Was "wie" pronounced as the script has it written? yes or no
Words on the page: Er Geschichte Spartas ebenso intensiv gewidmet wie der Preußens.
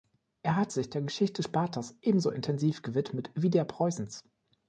yes